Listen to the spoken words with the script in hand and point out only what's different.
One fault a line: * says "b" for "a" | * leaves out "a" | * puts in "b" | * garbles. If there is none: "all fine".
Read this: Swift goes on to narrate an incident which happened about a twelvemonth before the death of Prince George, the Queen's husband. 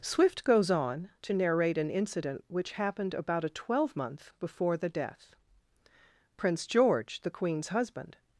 * leaves out "of"